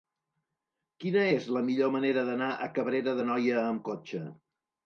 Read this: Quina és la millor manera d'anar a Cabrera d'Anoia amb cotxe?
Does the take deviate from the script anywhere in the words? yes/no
no